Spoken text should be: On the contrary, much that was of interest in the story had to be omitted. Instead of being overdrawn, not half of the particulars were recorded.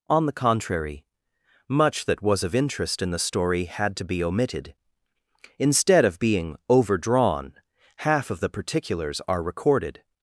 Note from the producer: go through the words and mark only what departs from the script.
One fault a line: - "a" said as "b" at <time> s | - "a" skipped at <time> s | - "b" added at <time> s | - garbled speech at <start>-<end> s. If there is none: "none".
- "not" skipped at 7.5 s
- "were" said as "are" at 9.3 s